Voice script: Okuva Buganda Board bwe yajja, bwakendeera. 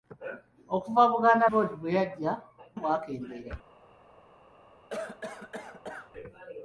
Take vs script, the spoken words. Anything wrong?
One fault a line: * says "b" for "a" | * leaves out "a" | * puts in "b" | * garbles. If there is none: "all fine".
all fine